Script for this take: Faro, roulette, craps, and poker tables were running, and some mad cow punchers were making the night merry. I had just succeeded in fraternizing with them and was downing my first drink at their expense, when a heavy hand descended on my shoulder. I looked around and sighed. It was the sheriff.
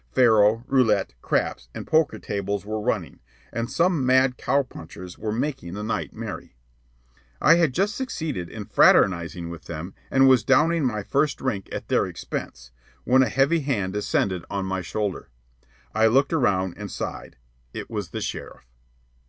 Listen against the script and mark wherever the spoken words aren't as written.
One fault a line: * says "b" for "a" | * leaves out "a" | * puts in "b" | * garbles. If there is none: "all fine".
all fine